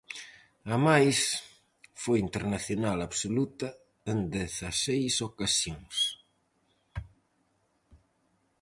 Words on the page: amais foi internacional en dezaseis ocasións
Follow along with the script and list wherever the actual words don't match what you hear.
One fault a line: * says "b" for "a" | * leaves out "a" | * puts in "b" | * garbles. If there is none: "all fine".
* puts in "absoluta"